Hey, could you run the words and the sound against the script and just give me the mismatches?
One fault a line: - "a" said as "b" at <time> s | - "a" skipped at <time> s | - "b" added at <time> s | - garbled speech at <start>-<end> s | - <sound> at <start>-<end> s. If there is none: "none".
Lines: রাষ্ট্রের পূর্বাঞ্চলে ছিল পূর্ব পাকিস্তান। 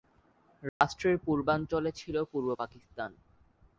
- dropout at 0.7-0.8 s